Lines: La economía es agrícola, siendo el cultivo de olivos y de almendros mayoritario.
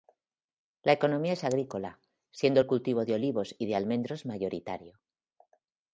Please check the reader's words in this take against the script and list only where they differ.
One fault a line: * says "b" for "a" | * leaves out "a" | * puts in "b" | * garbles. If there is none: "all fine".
all fine